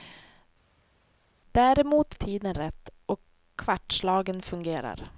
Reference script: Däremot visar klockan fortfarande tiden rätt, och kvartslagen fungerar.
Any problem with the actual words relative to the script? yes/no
yes